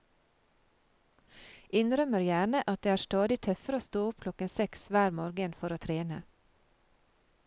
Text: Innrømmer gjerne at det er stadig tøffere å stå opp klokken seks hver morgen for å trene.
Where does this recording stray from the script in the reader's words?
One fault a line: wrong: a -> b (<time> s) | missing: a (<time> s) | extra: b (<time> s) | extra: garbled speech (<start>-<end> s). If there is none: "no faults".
no faults